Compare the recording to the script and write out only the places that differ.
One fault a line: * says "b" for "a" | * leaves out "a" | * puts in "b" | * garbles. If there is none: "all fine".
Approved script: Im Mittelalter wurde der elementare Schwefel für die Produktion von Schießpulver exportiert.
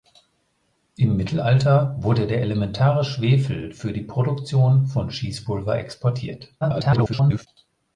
* garbles